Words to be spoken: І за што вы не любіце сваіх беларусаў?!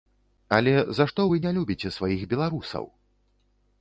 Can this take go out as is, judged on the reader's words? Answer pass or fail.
fail